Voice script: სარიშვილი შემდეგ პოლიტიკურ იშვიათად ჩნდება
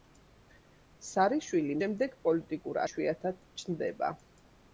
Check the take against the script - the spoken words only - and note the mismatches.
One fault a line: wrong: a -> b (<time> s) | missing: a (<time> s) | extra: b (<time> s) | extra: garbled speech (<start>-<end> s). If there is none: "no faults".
no faults